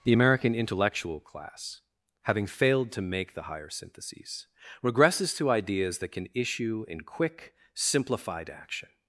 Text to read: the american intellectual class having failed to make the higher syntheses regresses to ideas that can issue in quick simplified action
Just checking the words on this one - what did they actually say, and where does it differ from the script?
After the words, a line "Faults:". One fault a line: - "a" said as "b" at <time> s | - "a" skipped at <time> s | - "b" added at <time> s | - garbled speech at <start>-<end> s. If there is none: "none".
the american intellectual class having failed to make the higher syntheses regresses to ideas that can issue in quick simplified action
Faults:
none